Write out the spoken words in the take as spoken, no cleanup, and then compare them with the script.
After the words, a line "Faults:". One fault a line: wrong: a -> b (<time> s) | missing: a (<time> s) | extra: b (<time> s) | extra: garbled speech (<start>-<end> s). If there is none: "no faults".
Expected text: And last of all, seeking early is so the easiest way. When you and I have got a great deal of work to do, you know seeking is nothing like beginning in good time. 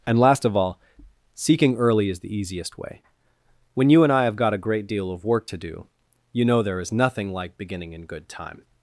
And last of all, seeking early is the easiest way. When you and I have got a great deal of work to do, you know there is nothing like beginning in good time.
Faults:
missing: so (2.2 s)
wrong: seeking -> there (6.6 s)